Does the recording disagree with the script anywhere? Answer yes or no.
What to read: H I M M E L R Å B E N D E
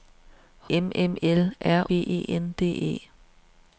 yes